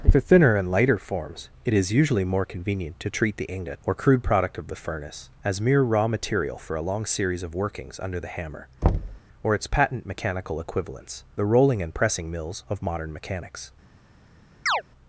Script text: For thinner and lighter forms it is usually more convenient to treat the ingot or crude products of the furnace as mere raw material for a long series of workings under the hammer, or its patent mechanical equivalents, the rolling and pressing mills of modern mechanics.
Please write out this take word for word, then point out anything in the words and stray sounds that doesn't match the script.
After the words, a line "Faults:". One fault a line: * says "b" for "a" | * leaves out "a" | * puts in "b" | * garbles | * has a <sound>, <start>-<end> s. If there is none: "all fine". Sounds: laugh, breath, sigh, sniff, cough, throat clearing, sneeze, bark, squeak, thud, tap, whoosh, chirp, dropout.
For thinner and lighter forms it is usually more convenient to treat the ingot or crude product of the furnace as mere raw material for a long series of workings under the hammer, or its patent mechanical equivalents, the rolling and pressing mills of modern mechanics.
Faults:
* says "product" for "products"
* has a thud, 8.8-9.2 s
* has a chirp, 14.7-14.8 s